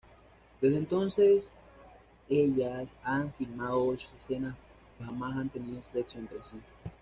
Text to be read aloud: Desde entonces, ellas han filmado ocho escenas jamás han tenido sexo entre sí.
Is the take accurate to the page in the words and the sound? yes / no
yes